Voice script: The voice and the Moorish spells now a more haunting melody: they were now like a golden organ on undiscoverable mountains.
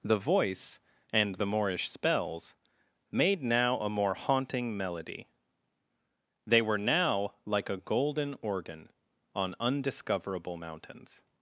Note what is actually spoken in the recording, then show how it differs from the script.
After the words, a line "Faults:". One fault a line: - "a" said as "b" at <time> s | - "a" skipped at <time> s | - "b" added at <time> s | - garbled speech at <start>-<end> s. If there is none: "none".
The voice and the Moorish spells made now a more haunting melody: they were now like a golden organ on undiscoverable mountains.
Faults:
- "made" added at 3.1 s